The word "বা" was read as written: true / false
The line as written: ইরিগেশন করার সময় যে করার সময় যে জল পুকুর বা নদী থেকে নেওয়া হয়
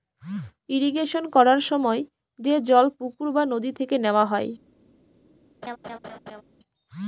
true